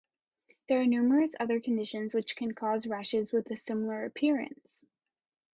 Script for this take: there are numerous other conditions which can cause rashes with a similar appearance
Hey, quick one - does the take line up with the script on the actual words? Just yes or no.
yes